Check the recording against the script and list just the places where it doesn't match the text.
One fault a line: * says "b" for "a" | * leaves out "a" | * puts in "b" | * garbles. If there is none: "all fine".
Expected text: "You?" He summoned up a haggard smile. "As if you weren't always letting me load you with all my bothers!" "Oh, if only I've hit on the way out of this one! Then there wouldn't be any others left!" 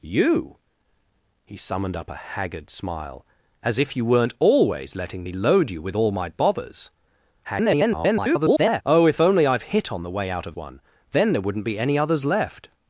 * garbles
* leaves out "this"